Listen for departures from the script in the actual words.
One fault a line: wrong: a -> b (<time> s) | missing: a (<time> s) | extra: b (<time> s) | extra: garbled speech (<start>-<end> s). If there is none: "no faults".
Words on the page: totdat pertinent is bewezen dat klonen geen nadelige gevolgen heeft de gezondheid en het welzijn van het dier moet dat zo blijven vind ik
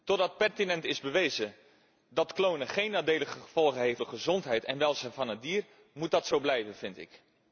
no faults